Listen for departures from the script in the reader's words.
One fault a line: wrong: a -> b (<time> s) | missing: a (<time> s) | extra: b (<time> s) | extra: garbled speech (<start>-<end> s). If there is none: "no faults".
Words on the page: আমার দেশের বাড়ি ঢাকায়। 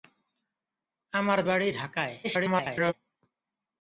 missing: দেশের (1.4 s)
extra: garbled speech (2.2-2.9 s)